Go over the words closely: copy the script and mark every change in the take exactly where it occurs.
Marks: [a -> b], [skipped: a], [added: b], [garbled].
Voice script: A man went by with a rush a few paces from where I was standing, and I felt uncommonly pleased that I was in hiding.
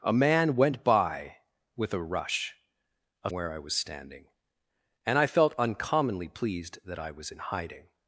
A man went by with a rush a [skipped: few paces from] where I was standing, and I felt uncommonly pleased that I was in hiding.